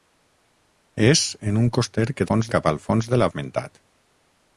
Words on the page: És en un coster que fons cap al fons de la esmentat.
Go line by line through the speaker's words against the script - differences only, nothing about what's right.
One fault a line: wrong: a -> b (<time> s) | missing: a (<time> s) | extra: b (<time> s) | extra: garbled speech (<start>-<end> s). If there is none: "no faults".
no faults